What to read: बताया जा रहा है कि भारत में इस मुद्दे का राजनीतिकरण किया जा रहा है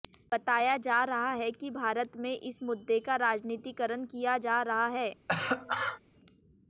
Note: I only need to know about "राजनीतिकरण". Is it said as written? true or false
true